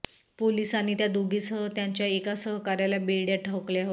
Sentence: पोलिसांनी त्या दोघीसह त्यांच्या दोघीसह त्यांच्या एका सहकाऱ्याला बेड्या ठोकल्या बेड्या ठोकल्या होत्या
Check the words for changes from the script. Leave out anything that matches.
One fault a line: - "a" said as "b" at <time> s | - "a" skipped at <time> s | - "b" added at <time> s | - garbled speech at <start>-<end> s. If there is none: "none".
- "दोघीसह त्यांच्या" skipped at 2.1 s
- "बेड्या ठोकल्या" skipped at 3.5 s